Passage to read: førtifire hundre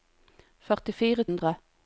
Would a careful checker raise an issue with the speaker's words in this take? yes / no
no